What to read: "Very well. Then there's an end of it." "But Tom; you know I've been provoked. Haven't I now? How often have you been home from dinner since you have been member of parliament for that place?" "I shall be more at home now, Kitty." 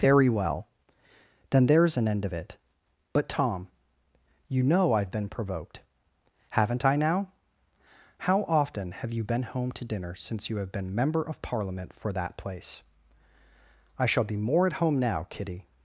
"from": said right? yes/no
no